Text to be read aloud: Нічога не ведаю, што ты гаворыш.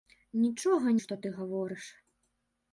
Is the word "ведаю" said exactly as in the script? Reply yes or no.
no